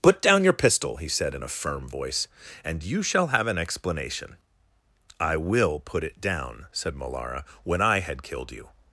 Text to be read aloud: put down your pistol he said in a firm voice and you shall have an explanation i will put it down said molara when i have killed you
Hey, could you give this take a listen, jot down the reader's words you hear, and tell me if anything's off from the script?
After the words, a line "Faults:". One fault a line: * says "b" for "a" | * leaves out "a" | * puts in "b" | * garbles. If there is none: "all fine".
put down your pistol he said in a firm voice and you shall have an explanation i will put it down said molara when i had killed you
Faults:
* says "had" for "have"